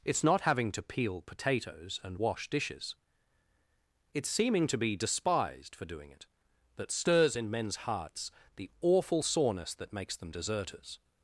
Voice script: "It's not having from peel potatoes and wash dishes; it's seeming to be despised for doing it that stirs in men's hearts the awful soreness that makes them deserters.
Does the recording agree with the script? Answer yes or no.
no